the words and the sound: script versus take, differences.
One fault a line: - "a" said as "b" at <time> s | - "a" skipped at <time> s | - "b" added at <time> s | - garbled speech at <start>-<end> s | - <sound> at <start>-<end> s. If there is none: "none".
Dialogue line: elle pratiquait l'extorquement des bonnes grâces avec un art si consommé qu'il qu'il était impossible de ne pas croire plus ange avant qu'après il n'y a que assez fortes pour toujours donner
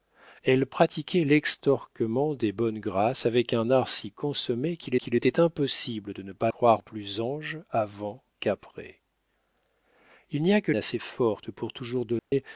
- dropout at 12.2-12.3 s